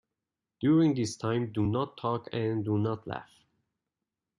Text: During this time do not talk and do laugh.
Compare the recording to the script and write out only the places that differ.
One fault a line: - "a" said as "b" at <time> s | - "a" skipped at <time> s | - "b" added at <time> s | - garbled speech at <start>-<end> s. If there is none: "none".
- "not" added at 2.8 s